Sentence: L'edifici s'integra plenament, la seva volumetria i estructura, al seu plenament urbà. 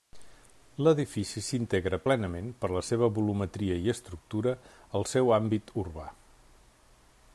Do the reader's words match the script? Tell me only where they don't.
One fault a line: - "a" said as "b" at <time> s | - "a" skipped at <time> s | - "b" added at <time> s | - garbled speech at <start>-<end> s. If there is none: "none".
- "per" added at 2.6 s
- "plenament" said as "àmbit" at 5.4 s